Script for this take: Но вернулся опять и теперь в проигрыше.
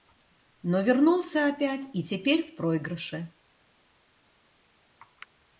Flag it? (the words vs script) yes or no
no